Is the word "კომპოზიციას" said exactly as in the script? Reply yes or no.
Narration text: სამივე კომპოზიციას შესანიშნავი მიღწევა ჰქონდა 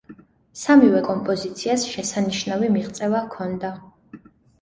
yes